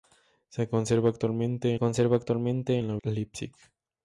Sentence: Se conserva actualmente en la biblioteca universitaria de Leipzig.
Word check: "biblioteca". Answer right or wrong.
wrong